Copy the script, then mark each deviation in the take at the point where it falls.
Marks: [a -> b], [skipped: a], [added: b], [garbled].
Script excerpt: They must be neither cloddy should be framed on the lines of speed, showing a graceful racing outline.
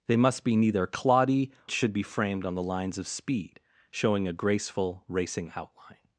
They must be neither cloddy should be framed on the lines of speed, showing a graceful racing outline.